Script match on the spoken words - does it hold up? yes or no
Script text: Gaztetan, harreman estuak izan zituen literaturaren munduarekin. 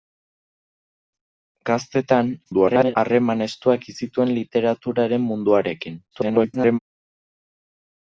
no